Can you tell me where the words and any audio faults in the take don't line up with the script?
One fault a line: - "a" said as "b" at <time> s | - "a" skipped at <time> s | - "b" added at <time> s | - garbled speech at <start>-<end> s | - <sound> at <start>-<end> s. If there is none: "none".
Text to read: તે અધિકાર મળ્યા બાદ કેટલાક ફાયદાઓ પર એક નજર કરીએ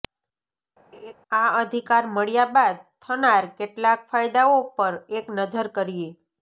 - laugh at 0.9-1.1 s
- "તે" said as "આ" at 1.3 s
- "થનાર" added at 3.0 s